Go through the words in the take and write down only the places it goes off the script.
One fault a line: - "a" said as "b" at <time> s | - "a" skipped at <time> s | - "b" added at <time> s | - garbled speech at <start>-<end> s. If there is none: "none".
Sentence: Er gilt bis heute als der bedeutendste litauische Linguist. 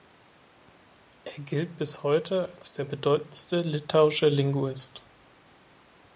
none